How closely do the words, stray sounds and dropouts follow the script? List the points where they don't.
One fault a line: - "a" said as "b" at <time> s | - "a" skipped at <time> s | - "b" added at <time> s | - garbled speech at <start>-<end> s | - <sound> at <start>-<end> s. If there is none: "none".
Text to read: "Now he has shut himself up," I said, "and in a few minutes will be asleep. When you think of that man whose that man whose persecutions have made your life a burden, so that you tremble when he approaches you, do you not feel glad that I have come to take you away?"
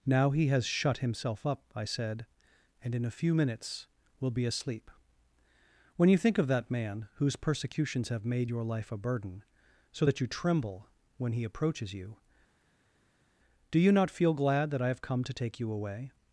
- "that man whose" skipped at 7.3 s